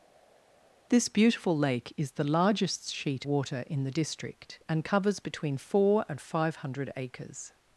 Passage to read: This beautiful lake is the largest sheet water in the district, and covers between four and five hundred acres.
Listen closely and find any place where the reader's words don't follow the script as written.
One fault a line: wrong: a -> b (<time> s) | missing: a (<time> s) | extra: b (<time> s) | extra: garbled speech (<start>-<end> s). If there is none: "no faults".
no faults